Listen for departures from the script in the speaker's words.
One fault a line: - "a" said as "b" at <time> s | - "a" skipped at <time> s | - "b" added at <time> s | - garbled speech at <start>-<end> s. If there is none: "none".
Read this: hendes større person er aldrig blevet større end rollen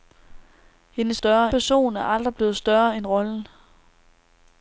none